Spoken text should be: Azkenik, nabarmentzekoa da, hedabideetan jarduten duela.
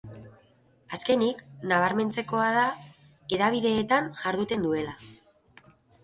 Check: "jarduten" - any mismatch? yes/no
no